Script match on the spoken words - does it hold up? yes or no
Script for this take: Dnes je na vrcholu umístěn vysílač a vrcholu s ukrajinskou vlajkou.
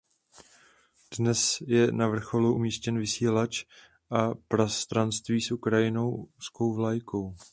no